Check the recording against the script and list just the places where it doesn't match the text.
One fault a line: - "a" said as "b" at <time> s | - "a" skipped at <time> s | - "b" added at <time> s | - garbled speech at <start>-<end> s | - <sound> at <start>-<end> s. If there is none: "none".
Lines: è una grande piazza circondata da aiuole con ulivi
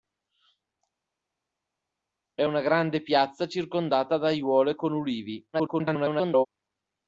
- garbled speech at 5.5-6.5 s